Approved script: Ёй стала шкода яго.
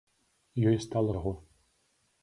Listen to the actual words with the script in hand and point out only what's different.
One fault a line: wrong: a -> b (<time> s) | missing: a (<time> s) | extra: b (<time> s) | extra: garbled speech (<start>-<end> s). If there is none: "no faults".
missing: шкода (1.1 s)